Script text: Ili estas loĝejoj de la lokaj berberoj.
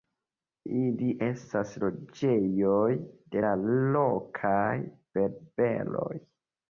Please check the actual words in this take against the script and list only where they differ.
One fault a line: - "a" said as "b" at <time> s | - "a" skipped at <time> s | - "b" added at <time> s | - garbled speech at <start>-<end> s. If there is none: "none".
none